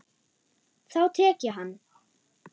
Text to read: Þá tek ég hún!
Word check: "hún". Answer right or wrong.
wrong